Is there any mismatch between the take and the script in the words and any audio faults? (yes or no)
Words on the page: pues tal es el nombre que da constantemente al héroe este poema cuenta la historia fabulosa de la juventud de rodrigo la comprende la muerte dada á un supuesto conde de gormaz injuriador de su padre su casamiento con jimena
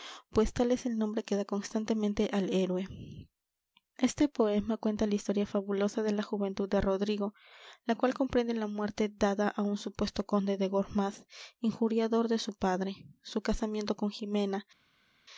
yes